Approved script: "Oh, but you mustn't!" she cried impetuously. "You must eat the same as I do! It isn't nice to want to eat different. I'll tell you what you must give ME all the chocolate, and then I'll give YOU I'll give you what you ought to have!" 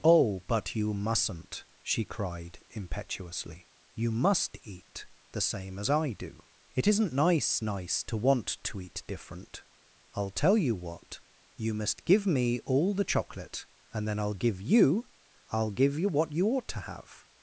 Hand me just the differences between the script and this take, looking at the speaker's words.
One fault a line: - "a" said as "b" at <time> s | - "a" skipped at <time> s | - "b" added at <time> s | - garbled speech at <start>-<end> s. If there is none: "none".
- "nice" added at 7.6 s